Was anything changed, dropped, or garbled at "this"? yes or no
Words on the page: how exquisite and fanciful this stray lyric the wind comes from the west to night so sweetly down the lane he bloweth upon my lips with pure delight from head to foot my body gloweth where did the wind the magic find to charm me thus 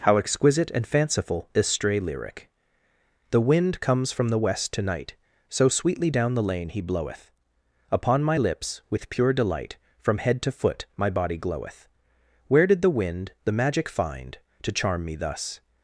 yes